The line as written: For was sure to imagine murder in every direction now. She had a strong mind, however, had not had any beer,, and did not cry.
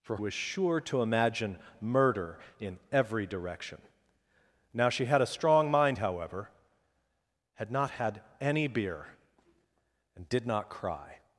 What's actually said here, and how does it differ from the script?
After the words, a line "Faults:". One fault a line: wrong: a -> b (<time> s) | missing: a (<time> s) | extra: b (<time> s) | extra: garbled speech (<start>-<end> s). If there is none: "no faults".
For was sure to imagine murder in every direction now. She had a strong mind, however, had not had any beer,, and did not cry.
Faults:
no faults